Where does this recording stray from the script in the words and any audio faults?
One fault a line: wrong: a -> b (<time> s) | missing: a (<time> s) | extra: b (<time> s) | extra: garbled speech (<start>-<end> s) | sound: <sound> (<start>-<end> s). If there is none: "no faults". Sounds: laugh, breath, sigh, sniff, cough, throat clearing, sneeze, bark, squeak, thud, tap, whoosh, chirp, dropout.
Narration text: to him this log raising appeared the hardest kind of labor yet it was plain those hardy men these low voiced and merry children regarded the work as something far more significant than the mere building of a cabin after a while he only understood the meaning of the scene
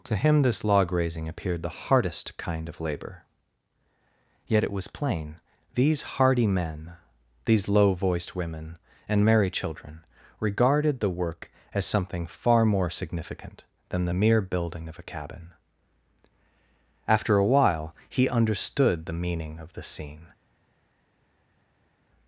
wrong: those -> these (5.8 s)
extra: women (8.4 s)
missing: only (18.3 s)